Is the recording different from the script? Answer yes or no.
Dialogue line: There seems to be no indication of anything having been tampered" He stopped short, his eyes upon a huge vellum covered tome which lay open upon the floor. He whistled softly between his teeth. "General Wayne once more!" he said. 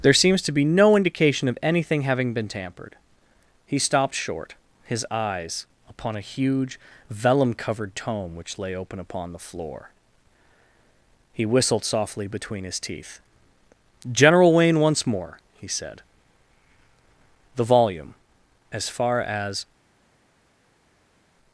yes